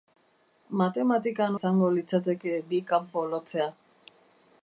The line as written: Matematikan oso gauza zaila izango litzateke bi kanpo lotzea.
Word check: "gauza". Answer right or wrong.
wrong